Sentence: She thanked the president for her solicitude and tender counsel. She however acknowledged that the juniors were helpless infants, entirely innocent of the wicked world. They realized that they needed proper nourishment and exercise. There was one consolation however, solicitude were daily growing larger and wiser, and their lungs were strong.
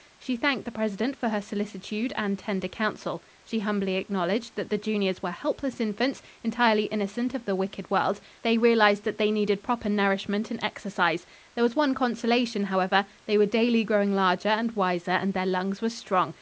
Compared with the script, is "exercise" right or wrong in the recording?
right